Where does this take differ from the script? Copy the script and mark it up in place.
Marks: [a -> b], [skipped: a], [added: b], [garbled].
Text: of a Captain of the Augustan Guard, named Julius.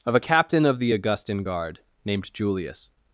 of a Captain of the Augustan Guard, named Julius.